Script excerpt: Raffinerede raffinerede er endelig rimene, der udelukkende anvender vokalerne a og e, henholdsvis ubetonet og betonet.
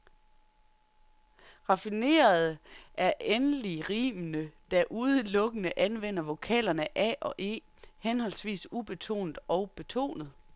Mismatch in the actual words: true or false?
true